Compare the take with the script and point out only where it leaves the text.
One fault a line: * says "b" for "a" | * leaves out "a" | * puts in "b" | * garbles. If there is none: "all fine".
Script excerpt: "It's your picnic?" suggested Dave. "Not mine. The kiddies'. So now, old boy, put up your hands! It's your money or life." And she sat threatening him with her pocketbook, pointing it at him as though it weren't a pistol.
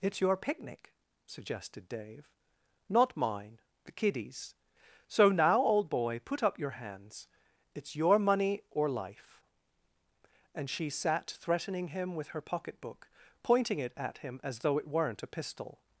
all fine